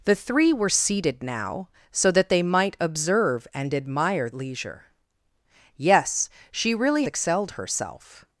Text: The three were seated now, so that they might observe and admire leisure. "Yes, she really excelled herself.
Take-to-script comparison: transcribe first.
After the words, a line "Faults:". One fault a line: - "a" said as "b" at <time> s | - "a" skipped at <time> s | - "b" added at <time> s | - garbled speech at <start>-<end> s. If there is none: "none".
The three were seated now, so that they might observe and admire leisure. "Yes, she really excelled herself.
Faults:
none